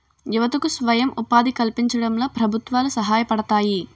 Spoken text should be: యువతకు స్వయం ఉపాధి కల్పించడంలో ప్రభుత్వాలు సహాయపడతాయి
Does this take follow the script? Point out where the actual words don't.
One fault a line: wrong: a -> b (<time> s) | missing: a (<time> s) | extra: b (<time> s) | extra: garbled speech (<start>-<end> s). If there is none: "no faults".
no faults